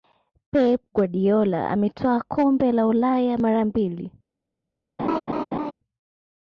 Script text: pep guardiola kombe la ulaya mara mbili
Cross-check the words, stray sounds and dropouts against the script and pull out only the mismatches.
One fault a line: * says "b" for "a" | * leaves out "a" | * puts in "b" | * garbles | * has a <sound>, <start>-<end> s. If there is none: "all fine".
* puts in "ametwaa"
* has a laugh, 5.0-5.7 s